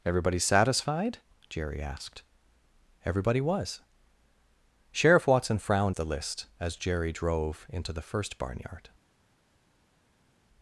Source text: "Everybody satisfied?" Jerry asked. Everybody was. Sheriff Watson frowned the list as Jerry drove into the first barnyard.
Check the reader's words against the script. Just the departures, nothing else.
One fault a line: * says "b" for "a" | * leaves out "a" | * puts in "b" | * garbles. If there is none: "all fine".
all fine